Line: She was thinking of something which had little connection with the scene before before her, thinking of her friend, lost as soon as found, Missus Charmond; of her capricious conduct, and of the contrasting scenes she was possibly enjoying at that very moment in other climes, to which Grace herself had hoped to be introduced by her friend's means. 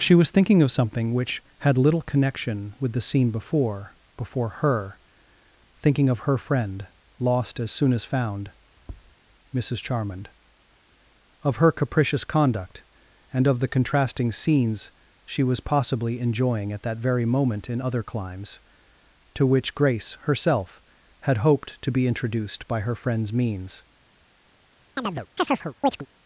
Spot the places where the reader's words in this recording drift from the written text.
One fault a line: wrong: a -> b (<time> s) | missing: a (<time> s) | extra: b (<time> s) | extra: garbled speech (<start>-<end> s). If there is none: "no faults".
no faults